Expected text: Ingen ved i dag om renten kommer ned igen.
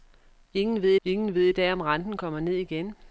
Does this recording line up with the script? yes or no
no